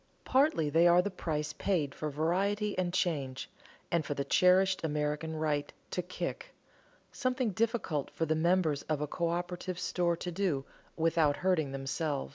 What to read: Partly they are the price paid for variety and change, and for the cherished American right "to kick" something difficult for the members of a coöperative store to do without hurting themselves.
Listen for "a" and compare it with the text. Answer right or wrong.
right